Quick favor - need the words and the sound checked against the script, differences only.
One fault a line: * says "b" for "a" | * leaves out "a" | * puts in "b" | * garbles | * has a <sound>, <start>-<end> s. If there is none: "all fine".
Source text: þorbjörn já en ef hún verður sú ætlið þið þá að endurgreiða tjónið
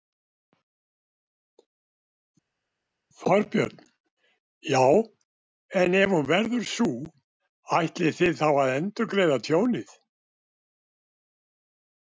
all fine